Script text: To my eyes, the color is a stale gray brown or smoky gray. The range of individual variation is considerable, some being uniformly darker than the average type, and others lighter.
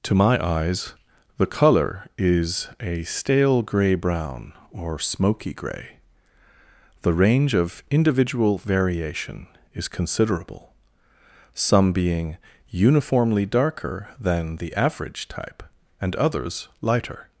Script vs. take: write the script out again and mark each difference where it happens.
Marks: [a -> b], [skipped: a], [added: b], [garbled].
To my eyes, the color is a stale gray brown or smoky gray. The range of individual variation is considerable, some being uniformly darker than the average type, and others lighter.